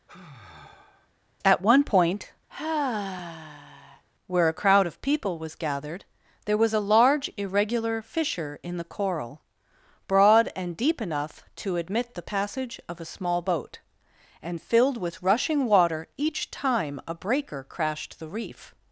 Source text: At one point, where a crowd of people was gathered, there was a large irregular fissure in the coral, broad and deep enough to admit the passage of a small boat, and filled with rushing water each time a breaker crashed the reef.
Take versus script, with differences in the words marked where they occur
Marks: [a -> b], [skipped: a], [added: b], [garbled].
At one point, where a crowd of people was gathered, there was a large irregular fissure in the coral, broad and deep enough to admit the passage of a small boat, and filled with rushing water each time a breaker crashed the reef.